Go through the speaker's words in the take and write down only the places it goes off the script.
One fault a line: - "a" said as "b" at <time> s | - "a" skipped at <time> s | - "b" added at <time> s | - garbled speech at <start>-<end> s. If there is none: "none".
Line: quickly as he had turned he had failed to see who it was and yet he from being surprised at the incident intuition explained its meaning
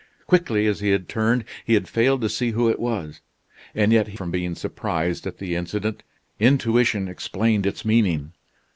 none